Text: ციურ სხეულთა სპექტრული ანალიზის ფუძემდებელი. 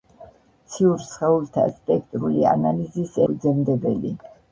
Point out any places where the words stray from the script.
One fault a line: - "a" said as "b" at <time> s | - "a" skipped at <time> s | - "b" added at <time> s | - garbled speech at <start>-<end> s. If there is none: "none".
none